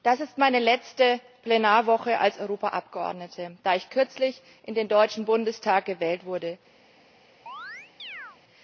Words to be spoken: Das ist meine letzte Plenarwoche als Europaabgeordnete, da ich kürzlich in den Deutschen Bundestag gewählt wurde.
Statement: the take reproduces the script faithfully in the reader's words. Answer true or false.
true